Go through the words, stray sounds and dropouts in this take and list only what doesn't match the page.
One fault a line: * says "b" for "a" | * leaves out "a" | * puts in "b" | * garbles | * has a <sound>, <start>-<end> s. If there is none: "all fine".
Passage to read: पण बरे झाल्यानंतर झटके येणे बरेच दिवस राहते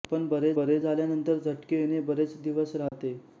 * puts in "बरे"
* has a dropout, 2.9-2.9 s